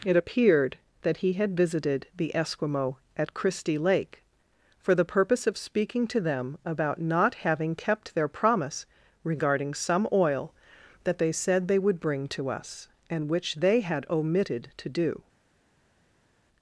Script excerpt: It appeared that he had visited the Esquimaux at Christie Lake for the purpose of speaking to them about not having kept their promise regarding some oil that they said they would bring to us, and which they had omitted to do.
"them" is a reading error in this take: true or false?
false